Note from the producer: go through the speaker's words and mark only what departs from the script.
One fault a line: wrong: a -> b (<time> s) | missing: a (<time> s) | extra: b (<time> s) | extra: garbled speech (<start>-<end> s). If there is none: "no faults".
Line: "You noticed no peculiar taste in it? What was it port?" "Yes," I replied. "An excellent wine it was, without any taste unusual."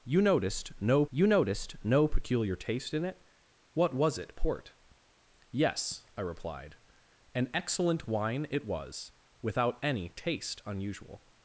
extra: you noticed no (1.1 s)